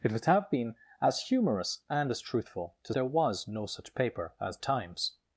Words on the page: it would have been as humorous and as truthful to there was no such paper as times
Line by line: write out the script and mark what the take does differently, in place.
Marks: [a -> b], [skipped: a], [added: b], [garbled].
it would have been as humorous and as truthful to there was no such paper as times